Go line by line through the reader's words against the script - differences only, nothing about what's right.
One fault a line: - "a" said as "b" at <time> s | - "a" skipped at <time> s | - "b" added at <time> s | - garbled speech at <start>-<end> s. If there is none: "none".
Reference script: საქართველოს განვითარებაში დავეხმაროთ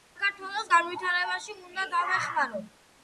- "უნდა" added at 1.6 s